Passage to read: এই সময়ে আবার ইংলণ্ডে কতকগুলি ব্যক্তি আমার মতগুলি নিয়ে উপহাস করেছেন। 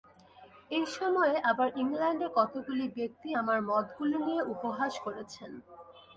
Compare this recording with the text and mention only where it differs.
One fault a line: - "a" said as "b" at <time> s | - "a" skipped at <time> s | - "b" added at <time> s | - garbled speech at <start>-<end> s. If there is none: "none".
none